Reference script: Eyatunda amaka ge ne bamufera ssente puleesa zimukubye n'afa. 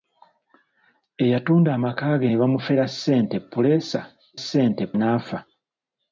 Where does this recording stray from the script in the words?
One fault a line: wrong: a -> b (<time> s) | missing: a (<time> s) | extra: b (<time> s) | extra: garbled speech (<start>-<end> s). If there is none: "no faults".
wrong: zimukubye -> ssente (4.4 s)